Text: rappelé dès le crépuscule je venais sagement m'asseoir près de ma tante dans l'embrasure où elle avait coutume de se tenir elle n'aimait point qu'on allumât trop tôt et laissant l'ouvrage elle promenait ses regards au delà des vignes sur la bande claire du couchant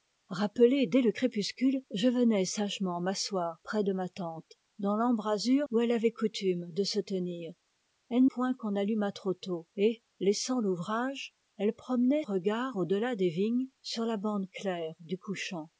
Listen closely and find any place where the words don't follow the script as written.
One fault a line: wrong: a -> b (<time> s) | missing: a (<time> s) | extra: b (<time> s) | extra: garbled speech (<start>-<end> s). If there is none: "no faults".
missing: n'aimait (8.2 s)
missing: ses (12.2 s)